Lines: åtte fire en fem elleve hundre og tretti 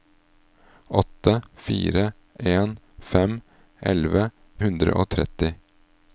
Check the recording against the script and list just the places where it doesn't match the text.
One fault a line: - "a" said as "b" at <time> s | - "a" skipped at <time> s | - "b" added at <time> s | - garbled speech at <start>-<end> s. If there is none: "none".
none